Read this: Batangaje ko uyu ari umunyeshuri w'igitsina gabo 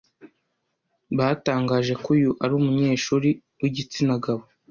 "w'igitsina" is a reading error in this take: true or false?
false